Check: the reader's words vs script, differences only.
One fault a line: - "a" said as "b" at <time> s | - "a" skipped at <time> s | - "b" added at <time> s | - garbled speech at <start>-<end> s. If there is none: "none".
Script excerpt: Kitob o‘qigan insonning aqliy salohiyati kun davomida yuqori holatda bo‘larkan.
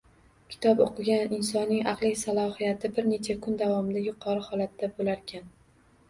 - "bir necha" added at 3.0 s